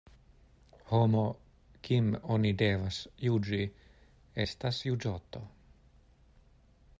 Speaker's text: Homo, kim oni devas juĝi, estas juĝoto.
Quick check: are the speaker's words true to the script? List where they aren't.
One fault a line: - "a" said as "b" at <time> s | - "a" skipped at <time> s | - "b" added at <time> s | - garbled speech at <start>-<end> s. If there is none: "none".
none